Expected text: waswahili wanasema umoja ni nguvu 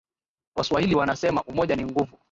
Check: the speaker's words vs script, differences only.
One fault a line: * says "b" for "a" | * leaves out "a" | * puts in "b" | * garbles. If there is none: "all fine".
all fine